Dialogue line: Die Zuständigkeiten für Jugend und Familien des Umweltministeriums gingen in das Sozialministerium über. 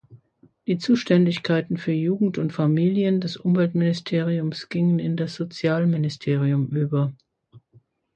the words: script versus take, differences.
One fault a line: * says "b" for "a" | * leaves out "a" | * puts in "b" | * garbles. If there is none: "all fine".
all fine